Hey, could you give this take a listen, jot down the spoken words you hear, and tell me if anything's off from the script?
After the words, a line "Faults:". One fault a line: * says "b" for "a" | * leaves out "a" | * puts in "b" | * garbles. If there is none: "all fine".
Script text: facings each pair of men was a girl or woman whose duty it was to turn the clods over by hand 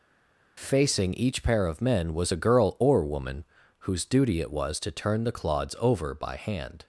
facing each pair of men was a girl or woman whose duty it was to turn the clods over by hand
Faults:
* says "facing" for "facings"